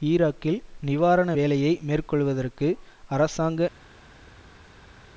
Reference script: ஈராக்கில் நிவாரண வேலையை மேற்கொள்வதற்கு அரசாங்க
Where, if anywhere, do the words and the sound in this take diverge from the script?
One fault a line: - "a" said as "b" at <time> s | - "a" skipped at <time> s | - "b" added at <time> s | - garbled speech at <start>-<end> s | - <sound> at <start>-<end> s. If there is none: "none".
none